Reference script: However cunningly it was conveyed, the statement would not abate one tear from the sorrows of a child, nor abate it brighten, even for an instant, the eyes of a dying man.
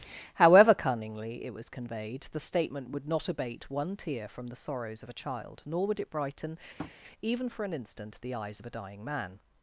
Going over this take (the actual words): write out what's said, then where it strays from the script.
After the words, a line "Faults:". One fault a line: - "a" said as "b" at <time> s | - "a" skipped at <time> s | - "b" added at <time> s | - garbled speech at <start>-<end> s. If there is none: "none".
However cunningly it was conveyed, the statement would not abate one tear from the sorrows of a child, nor would it brighten, even for an instant, the eyes of a dying man.
Faults:
- "abate" said as "would" at 5.9 s